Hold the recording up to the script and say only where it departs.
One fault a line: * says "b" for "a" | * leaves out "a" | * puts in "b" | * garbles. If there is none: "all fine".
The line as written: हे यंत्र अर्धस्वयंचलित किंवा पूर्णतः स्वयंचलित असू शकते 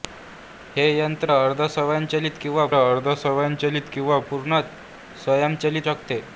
* puts in "अर्धस्वयंचलित किंवा"
* leaves out "असू"